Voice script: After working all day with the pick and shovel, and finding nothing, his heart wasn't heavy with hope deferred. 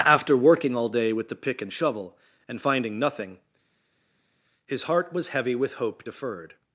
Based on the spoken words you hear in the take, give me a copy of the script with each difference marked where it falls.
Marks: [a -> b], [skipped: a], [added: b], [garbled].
After working all day with the pick and shovel, and finding nothing, his heart [wasn't -> was] heavy with hope deferred.